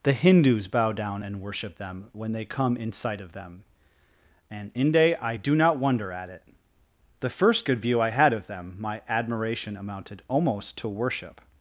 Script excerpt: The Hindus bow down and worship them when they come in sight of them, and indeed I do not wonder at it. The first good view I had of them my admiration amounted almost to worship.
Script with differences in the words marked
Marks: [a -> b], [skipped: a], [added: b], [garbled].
The Hindus bow down and worship them when they come in sight of them, and [indeed -> inde] I do not wonder at it. The first good view I had of them my admiration amounted almost to worship.